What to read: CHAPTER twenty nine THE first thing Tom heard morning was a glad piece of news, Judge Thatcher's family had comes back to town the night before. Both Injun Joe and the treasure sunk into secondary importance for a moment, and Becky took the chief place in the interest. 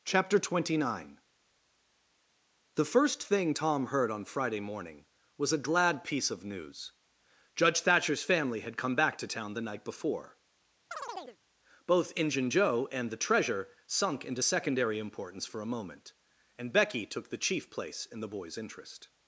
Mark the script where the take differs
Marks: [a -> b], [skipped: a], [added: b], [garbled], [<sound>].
CHAPTER twenty nine THE first thing Tom heard [added: on Friday] morning was a glad piece of news, Judge Thatcher's family had [comes -> come] back to town the night before. [chirp] Both Injun Joe and the treasure sunk into secondary importance for a moment, and Becky took the chief place in the [added: boy's] interest.